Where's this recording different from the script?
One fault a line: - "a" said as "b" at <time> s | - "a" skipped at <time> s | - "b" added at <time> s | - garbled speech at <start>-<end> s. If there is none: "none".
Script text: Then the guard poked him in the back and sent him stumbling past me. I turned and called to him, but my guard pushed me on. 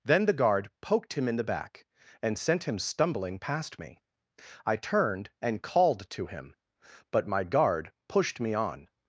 none